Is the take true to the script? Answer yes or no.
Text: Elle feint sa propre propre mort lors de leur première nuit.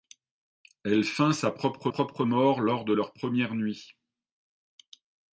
yes